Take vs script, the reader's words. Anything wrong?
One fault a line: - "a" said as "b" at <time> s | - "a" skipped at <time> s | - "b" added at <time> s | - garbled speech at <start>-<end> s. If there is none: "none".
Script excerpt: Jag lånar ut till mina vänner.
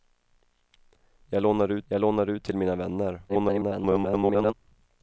- "jag lånar ut" added at 1.9 s
- garbled speech at 3.3-4.5 s